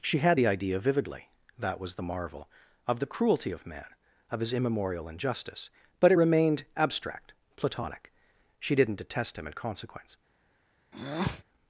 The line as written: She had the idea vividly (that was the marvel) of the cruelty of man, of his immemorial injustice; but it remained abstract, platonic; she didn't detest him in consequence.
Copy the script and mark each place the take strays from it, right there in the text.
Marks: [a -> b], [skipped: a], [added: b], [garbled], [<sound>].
She had the idea vividly (that was the marvel) of the cruelty of man, of his immemorial injustice; but it remained abstract, platonic; she didn't detest him in consequence. [breath]